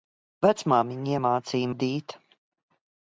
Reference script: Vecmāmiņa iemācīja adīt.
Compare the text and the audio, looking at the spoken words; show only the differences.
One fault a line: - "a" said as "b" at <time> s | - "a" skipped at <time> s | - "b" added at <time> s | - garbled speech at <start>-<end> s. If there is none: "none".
none